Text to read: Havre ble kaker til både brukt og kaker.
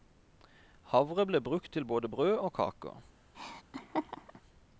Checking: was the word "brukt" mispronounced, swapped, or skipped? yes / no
yes